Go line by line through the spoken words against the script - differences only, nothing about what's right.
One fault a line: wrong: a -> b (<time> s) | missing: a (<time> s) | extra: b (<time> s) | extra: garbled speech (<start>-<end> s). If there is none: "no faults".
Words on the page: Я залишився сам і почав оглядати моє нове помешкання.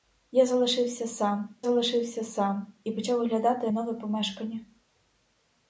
extra: залишився сам (1.6 s)
missing: моє (3.7 s)